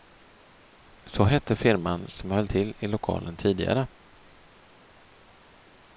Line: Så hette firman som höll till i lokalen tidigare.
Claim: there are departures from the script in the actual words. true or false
false